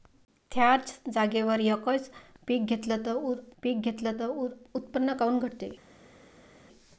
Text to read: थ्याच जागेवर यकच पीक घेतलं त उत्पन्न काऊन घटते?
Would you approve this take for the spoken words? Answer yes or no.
no